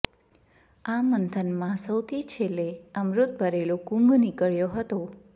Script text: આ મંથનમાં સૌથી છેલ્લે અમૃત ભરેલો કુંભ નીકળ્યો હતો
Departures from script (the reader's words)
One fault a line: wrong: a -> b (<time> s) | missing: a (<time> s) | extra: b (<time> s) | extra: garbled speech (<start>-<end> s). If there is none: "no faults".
no faults